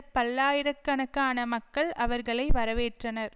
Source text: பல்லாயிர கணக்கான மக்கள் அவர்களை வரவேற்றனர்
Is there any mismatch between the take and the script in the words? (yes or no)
no